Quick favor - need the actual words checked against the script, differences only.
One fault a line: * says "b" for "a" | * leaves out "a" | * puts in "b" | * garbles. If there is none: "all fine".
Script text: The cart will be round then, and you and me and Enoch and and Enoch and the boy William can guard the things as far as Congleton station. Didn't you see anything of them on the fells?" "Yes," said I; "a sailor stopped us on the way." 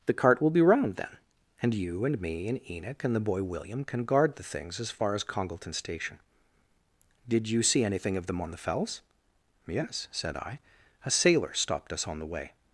* leaves out "and Enoch and"
* says "Did" for "Didn't"